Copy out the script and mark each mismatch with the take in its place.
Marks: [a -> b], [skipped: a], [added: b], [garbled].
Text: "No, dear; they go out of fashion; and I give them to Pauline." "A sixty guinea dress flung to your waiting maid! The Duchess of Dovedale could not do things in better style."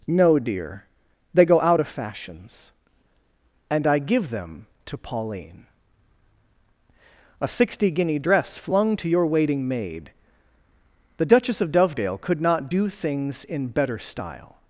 "No, dear; they go out of [fashion; -> fashions] and I give them to Pauline." "A sixty guinea dress flung to your waiting maid! The Duchess of Dovedale could not do things in better style."